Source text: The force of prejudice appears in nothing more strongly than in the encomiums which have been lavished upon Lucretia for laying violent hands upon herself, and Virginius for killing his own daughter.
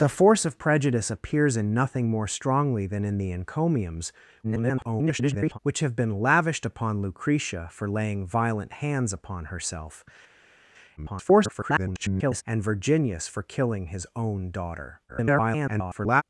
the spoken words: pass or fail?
fail